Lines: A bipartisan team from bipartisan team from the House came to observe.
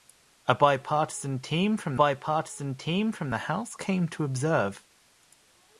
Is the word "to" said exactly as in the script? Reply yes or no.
yes